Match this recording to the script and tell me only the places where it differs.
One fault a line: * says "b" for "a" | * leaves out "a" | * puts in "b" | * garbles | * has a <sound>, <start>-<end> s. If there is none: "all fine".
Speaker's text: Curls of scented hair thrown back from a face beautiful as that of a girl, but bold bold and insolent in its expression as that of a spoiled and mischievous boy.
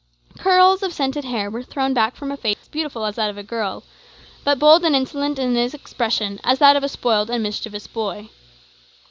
* puts in "were"
* has a dropout, 2.5-2.6 s
* leaves out "bold"